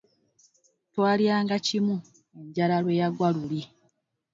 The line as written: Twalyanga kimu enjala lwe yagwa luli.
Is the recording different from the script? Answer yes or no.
no